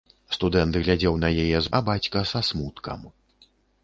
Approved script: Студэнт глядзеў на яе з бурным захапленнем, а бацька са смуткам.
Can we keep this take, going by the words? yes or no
no